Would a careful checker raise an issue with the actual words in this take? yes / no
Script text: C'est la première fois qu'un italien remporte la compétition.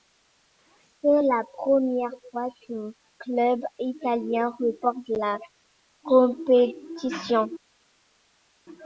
yes